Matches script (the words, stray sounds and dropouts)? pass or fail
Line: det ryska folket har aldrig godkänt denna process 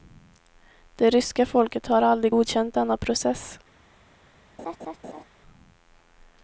fail